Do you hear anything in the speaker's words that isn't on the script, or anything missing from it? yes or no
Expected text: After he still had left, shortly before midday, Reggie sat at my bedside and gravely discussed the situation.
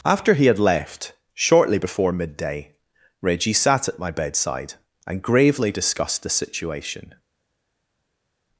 yes